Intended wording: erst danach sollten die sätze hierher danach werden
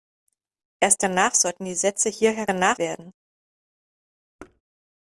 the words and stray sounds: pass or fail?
fail